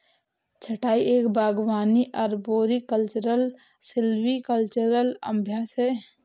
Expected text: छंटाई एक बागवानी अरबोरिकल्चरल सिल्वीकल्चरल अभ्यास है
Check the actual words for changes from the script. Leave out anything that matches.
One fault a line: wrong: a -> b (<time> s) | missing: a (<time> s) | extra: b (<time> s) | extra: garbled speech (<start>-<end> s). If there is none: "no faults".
no faults